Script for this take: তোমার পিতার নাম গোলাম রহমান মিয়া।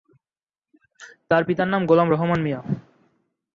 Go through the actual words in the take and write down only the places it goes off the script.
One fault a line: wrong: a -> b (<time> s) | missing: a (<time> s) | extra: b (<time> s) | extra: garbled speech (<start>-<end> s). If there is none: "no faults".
wrong: তোমার -> তার (1.3 s)